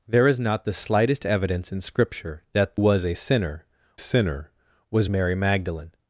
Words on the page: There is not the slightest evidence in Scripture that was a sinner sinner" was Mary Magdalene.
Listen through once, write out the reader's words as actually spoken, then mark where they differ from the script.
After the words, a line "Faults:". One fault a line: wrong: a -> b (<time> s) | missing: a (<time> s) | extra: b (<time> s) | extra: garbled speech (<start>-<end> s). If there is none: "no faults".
There is not the slightest evidence in Scripture that was a sinner sinner" was Mary Magdalene.
Faults:
no faults